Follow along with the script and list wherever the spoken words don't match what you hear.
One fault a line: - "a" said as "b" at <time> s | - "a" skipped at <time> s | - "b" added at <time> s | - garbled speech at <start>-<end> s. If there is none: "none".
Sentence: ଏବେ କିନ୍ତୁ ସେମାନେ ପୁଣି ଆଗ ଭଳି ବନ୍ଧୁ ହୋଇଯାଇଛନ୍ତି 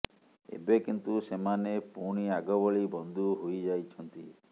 none